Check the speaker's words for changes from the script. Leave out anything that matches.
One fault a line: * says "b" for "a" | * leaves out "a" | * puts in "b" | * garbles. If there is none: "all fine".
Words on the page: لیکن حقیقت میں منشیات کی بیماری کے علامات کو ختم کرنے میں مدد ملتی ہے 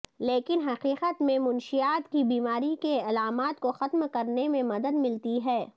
all fine